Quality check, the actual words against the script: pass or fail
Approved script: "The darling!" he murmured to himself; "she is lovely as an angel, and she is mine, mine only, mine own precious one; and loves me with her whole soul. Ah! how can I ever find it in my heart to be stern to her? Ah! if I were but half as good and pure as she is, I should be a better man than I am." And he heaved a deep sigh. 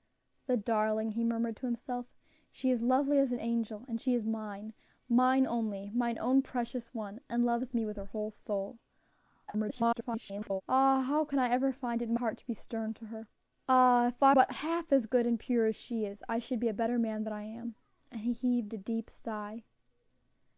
fail